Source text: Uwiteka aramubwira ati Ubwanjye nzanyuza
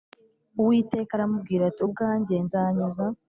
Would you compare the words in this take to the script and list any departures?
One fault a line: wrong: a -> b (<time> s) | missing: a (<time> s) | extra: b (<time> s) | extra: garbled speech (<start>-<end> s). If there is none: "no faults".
no faults